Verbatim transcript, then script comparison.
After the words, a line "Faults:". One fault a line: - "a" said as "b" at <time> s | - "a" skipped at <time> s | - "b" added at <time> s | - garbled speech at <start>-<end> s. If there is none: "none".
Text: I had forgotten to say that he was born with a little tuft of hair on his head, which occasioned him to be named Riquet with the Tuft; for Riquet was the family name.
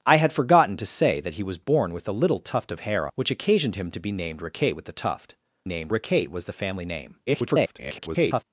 I had forgotten to say that he was born with a little tuft of hair which occasioned him to be named Riquet with the Tuft; named Riquet was the family name. [garbled]
Faults:
- "on his head" skipped at 3.1 s
- "for" said as "named" at 5.6 s
- garbled speech at 7.3-8.4 s